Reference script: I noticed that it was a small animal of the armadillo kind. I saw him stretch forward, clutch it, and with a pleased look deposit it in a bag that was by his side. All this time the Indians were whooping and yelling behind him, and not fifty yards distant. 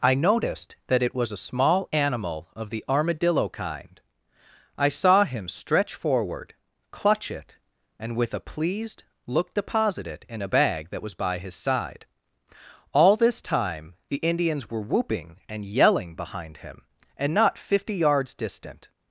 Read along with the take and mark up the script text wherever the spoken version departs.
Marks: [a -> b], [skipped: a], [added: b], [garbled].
I noticed that it was a small animal of the armadillo kind. I saw him stretch forward, clutch it, and with a pleased look deposit it in a bag that was by his side. All this time the Indians were whooping and yelling behind him, and not fifty yards distant.